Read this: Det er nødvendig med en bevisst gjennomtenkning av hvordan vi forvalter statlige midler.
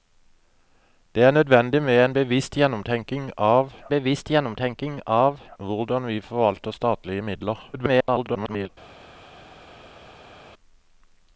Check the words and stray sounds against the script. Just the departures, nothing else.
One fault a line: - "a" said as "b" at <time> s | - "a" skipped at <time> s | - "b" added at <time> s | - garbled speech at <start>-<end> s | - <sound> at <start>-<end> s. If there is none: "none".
- "bevisst gjennomtenkning av" added at 3.9 s
- garbled speech at 7.7-8.7 s